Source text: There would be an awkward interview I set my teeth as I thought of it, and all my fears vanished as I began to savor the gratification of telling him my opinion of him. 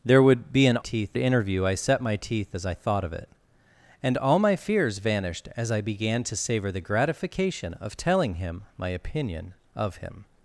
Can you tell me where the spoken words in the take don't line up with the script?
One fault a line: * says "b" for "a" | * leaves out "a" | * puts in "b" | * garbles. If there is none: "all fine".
* says "teeth" for "awkward"